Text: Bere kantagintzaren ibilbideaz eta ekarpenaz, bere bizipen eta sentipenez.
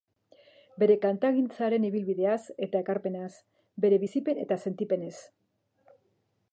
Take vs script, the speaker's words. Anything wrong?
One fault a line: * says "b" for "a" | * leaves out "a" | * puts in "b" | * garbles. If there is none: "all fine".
all fine